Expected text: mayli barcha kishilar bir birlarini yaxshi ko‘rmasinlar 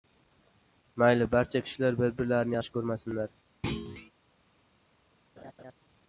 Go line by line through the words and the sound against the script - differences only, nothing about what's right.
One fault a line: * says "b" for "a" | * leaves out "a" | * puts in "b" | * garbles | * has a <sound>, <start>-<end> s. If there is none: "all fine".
* has a thud, 3.6-4.1 s
* has a laugh, 5.4-5.7 s